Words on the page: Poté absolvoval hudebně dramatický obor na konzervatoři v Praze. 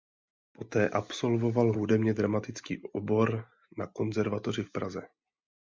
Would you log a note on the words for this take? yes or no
no